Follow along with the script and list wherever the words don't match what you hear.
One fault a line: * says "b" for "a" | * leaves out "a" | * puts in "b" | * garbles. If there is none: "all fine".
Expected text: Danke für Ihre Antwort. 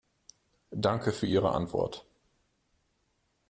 all fine